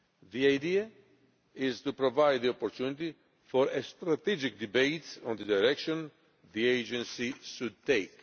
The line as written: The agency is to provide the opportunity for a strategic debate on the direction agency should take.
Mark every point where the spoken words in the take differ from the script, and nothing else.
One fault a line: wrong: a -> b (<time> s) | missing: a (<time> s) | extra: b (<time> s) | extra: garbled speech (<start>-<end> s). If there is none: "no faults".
wrong: agency -> idea (0.5 s)
extra: the (6.5 s)